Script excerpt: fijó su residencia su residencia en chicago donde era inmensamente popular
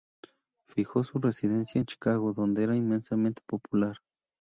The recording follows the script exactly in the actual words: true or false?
false